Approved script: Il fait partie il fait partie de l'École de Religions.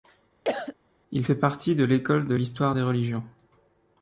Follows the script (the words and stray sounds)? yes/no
no